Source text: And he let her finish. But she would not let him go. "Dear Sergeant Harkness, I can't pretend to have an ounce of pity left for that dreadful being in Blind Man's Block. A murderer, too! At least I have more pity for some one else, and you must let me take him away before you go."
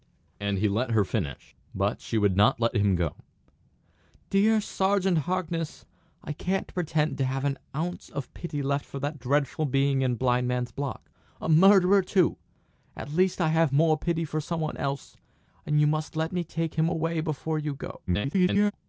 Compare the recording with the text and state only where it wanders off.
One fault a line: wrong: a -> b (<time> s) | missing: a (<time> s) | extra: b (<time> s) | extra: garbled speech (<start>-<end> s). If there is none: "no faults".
extra: garbled speech (18.1-18.7 s)